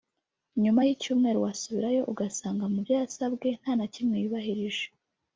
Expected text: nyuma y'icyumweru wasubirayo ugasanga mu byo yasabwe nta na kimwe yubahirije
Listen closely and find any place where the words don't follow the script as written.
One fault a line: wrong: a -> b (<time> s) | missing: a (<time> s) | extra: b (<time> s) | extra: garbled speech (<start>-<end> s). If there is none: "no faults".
no faults